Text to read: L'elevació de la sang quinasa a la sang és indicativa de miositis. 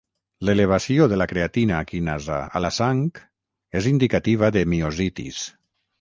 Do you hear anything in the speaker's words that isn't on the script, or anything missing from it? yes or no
yes